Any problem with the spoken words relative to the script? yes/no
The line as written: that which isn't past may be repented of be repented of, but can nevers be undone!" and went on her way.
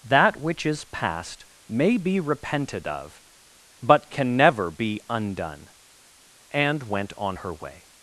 yes